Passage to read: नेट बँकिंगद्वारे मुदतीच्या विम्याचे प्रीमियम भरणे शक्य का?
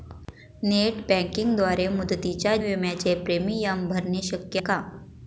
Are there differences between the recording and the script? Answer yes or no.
no